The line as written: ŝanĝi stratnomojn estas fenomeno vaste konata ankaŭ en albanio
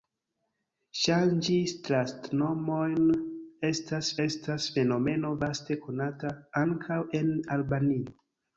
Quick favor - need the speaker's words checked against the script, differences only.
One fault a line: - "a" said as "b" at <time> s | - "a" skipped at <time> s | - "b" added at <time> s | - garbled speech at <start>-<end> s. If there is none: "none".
- "estas" added at 4.3 s